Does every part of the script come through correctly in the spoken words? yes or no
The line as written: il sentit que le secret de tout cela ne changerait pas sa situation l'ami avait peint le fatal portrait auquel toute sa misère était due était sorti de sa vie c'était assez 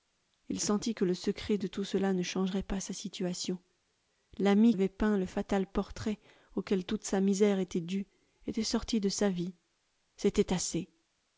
yes